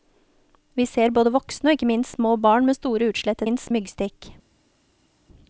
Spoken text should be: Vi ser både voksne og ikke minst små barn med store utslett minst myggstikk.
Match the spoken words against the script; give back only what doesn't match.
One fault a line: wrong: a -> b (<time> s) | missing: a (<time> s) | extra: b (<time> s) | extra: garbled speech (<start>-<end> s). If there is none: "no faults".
no faults